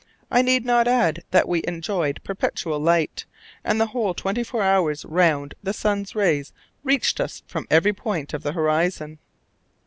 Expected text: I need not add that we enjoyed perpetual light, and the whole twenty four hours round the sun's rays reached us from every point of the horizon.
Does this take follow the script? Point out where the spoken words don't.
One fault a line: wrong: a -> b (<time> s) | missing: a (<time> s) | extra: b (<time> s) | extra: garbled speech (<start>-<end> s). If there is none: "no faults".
no faults